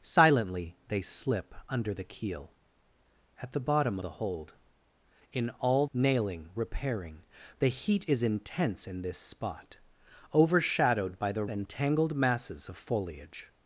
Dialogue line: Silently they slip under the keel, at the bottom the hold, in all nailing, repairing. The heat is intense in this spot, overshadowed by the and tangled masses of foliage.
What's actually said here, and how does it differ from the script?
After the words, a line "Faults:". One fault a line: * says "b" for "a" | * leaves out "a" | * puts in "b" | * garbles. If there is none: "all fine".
Silently they slip under the keel, at the bottom the hold, in all nailing, repairing. The heat is intense in this spot, overshadowed by the and tangled masses of foliage.
Faults:
all fine